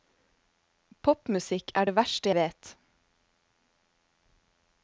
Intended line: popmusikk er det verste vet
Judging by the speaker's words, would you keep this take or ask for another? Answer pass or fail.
pass